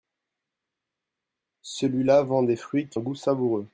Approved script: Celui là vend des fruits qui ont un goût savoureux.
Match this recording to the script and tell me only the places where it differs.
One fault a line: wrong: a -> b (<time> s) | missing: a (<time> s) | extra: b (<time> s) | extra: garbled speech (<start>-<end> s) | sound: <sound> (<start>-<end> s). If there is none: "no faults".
missing: ont (3.0 s)